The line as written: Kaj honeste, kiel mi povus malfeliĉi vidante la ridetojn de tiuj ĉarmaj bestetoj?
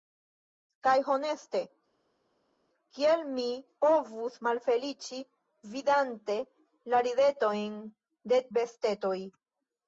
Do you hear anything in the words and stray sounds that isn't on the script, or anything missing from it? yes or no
yes